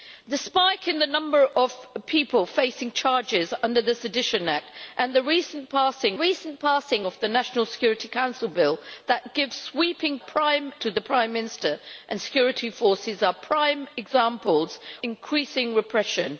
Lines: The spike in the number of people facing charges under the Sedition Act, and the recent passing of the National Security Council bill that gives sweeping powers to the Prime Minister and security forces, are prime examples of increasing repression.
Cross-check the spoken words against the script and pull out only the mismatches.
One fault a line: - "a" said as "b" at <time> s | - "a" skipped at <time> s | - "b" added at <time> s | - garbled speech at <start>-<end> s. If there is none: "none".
- "recent passing" added at 6.1 s
- "powers" said as "prime" at 10.2 s
- "of" skipped at 14.8 s